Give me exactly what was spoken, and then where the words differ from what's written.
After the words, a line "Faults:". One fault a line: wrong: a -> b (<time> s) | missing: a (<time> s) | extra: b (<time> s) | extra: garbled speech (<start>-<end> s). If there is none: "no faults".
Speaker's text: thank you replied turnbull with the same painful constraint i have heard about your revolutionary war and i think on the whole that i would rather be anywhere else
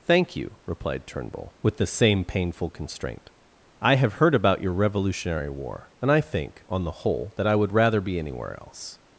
thank you replied turnbull with the same painful constraint i have heard about your revolutionary war and i think on the whole that i would rather be anywhere else
Faults:
no faults